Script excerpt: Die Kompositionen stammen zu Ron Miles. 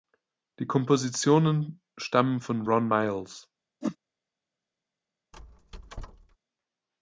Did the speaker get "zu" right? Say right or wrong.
wrong